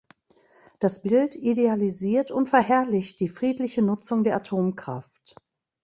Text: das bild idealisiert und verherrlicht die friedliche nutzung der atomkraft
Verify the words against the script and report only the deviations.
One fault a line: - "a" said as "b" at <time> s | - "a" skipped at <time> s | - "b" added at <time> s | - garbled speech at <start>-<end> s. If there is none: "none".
none